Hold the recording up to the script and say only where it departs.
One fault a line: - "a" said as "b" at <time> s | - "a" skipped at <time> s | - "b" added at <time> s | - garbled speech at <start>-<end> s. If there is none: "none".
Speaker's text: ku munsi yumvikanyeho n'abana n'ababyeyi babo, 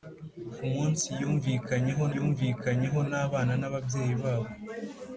- "yumvikanyeho" added at 2.2 s